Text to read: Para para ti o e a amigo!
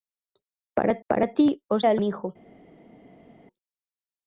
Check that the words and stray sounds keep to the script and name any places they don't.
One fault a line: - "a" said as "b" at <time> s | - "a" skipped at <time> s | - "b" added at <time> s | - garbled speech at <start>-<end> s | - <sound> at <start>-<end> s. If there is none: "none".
none